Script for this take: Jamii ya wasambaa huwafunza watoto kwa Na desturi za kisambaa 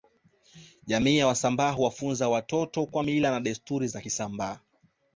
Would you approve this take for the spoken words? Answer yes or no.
no